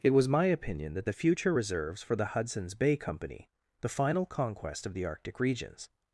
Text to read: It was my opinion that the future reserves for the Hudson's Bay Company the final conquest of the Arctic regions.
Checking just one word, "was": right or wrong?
right